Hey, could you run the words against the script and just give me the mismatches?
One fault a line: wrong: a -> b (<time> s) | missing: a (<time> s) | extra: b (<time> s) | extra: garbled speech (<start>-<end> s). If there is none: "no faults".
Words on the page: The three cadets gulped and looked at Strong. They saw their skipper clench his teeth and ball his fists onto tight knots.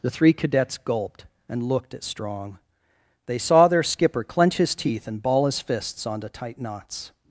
no faults